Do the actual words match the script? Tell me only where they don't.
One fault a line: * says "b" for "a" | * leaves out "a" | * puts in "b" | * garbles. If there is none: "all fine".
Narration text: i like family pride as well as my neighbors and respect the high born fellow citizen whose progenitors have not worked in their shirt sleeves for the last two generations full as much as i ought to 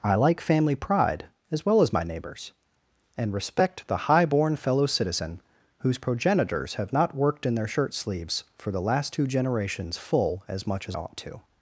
* leaves out "i"